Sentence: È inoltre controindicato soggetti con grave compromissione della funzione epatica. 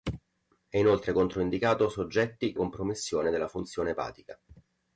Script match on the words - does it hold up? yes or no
no